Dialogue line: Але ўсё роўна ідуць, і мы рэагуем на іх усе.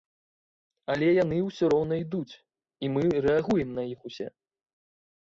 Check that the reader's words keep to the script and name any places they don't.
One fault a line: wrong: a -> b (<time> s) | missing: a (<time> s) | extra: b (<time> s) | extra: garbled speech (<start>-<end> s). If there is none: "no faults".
extra: яны (1.2 s)